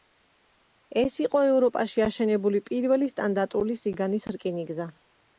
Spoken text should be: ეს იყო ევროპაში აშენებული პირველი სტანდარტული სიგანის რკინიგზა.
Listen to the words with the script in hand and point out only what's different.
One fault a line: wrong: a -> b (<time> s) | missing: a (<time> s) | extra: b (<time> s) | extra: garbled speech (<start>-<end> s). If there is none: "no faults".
no faults